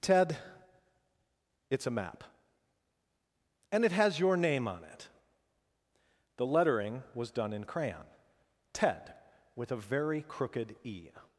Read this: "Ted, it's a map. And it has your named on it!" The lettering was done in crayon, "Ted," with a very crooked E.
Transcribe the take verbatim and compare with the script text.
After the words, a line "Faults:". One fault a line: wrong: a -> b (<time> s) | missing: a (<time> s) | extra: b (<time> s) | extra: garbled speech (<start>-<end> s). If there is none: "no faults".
"Ted, it's a map. And it has your name on it!" The lettering was done in crayon, "Ted," with a very crooked E.
Faults:
wrong: named -> name (4.3 s)